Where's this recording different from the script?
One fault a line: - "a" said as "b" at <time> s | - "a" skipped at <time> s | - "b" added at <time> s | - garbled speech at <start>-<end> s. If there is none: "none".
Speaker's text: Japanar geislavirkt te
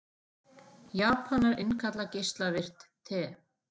- "innkalla" added at 1.6 s